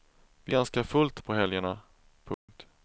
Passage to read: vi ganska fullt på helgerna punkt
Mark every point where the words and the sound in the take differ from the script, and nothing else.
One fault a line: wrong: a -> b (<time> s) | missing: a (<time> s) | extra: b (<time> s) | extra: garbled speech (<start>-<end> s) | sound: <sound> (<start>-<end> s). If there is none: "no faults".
sound: dropout (2.3-2.5 s)